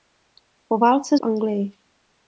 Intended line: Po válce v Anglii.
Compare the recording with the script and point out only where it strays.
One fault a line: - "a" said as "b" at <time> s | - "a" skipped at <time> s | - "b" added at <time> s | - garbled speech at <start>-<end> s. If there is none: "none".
none